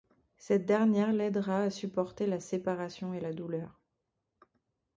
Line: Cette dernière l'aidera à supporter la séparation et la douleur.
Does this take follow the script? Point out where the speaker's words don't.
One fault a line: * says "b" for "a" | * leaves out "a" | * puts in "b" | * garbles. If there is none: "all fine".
all fine